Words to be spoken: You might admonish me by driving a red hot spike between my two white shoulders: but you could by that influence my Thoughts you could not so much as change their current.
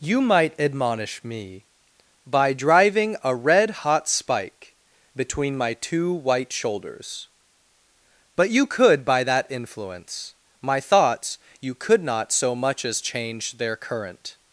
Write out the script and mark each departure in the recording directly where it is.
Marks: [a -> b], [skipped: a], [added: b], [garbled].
You might admonish me by driving a red hot spike between my two white shoulders: but you could by that influence my Thoughts you could not so much as change their current.